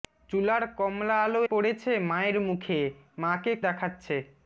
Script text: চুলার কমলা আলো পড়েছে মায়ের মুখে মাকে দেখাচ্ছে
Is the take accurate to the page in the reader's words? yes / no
yes